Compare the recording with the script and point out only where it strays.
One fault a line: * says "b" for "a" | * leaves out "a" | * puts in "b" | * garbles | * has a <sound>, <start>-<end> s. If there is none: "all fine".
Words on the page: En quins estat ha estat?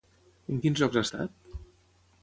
* says "llocs" for "estat"